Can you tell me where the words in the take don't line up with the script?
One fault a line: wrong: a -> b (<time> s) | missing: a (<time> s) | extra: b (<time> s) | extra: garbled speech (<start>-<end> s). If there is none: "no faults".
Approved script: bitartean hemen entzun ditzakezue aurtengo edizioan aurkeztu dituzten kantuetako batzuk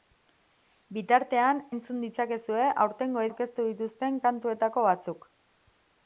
missing: hemen (1.6 s)
missing: edizioan (3.3 s)